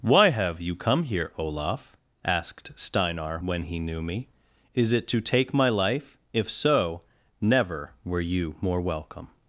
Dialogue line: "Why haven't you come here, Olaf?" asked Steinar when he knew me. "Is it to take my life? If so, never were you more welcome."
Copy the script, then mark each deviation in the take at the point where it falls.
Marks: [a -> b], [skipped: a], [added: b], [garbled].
"Why [haven't -> have] you come here, Olaf?" asked Steinar when he knew me. "Is it to take my life? If so, never were you more welcome."